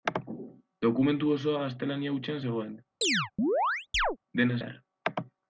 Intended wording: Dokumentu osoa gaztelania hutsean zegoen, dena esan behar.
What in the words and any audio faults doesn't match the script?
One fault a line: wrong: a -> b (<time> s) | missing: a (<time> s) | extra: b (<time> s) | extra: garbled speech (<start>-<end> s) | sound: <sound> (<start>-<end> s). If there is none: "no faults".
sound: chirp (3.0-4.2 s)
missing: esan (4.6 s)